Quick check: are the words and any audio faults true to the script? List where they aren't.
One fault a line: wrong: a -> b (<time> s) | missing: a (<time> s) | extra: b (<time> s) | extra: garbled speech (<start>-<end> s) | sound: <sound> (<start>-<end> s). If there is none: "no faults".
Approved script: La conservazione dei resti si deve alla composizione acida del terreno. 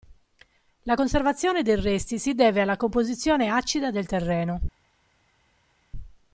no faults